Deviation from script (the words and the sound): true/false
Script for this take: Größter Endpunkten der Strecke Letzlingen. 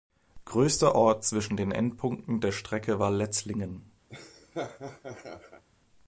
true